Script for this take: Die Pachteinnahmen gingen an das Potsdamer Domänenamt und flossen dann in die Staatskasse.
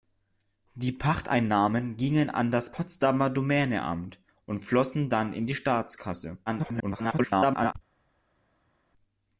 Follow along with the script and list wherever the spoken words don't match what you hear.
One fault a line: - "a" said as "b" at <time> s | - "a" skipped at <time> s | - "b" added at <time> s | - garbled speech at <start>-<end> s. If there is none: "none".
- garbled speech at 6.5-7.7 s